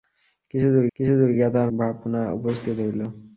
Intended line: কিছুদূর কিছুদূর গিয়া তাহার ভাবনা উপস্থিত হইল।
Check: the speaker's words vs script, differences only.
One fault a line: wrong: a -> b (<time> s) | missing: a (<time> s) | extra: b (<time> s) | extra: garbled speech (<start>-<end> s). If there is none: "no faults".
no faults